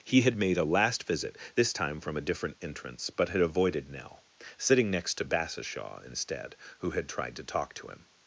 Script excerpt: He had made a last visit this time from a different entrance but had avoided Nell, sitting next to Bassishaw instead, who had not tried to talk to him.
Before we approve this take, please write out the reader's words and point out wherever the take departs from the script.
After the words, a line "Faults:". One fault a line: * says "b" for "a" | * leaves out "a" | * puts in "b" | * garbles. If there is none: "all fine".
He had made a last visit this time from a different entrance but had avoided Nell, sitting next to Bassishaw instead, who had tried to talk to him.
Faults:
* leaves out "not"